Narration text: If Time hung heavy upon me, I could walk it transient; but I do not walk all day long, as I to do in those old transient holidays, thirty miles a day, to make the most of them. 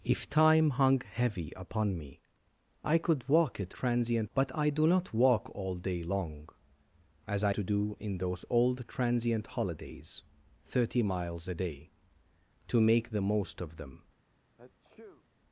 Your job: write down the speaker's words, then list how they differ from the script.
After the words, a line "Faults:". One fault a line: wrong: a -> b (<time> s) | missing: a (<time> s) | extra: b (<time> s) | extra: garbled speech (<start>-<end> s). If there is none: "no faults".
If Time hung heavy upon me, I could walk it transient; but I do not walk all day long, as I to do in those old transient holidays, thirty miles a day, to make the most of them.
Faults:
no faults